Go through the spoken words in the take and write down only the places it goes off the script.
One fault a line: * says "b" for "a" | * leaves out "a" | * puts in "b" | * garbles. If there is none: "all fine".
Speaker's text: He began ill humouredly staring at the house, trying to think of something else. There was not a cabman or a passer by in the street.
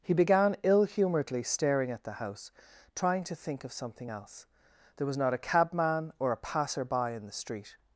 all fine